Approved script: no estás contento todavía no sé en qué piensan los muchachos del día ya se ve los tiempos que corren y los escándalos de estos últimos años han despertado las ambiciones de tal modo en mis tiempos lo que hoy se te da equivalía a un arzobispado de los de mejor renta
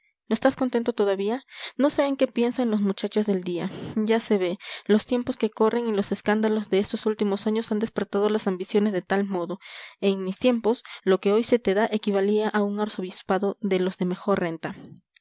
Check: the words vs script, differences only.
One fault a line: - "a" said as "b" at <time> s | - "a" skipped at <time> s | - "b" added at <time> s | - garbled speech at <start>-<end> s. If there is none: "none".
none